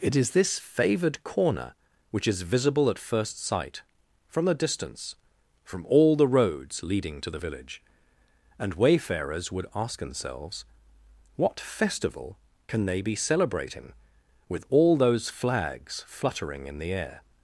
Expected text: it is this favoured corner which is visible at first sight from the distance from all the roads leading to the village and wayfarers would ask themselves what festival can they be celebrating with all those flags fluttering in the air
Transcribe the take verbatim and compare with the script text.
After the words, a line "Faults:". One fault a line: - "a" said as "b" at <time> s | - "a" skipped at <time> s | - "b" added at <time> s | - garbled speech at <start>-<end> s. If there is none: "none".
it is this favoured corner which is visible at first sight from the distance from all the roads leading to the village and wayfarers would ask themselves what festival can they be celebrating with all those flags fluttering in the air
Faults:
none